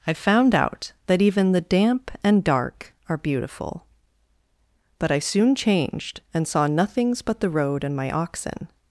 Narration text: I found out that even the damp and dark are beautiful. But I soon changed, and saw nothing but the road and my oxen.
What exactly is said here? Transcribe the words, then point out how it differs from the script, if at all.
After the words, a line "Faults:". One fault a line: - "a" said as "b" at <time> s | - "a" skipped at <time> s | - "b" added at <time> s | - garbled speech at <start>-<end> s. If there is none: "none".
I found out that even the damp and dark are beautiful. But I soon changed, and saw nothings but the road and my oxen.
Faults:
- "nothing" said as "nothings" at 6.7 s